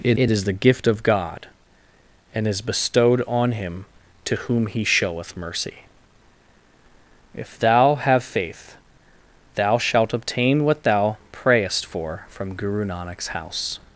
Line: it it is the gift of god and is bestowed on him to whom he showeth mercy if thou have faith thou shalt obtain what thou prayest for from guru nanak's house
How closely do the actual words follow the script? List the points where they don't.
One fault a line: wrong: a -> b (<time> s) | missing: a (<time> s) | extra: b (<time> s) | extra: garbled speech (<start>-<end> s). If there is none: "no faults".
no faults